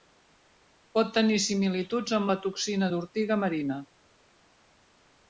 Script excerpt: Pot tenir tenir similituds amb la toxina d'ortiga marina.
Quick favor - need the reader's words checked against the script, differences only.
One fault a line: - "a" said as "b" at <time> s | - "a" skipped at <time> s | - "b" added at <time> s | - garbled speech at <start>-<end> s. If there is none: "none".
- "tenir" skipped at 1.4 s